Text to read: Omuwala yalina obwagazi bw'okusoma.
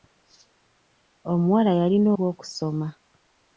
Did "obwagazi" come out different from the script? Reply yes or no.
yes